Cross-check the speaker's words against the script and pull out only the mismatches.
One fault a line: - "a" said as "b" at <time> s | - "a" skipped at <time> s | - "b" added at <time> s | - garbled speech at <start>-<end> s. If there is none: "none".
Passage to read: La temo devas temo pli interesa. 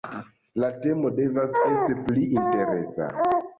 - "temo" said as "esti" at 1.7 s